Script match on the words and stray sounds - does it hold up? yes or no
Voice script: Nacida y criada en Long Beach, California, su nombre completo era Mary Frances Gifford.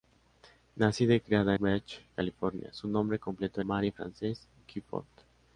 no